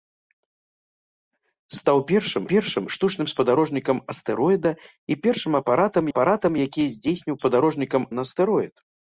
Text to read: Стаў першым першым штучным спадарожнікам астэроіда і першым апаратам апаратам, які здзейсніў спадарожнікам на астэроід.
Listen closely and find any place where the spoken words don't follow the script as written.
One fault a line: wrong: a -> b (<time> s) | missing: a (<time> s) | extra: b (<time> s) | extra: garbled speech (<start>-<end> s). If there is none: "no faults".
no faults